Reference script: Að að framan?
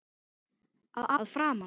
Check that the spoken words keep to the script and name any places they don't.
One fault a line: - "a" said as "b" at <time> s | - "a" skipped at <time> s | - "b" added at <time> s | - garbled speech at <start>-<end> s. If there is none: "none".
none